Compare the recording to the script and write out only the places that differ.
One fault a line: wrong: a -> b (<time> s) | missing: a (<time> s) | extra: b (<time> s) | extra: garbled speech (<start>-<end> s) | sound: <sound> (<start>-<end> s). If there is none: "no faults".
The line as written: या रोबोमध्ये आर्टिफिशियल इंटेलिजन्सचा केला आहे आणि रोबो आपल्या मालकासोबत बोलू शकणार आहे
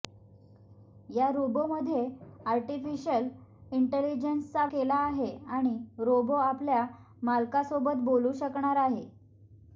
no faults